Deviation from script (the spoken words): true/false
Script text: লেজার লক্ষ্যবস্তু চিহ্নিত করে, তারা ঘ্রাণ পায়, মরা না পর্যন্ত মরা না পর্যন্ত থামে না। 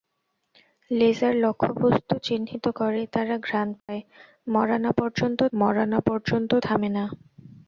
false